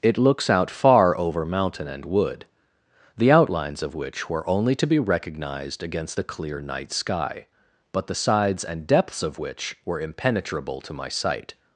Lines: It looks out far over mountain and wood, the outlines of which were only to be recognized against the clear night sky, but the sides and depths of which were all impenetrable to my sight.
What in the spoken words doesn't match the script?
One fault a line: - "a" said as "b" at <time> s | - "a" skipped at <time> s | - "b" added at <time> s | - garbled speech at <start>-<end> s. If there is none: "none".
- "all" skipped at 10.0 s